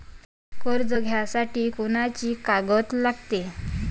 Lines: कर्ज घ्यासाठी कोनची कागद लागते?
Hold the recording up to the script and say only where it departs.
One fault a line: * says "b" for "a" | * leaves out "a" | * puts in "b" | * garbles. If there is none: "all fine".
all fine